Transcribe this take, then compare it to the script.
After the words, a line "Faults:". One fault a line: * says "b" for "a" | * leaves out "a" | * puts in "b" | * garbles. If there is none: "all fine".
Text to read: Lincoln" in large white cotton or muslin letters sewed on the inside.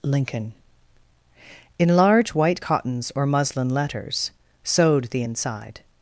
Lincoln" in large white cottons or muslin letters sewed the inside.
Faults:
* says "cottons" for "cotton"
* leaves out "on"